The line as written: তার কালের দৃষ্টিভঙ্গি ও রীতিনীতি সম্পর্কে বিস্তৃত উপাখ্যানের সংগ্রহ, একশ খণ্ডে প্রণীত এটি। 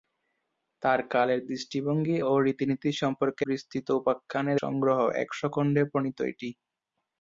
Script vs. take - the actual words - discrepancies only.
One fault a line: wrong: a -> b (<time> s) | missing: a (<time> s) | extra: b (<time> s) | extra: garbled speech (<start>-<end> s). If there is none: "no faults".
no faults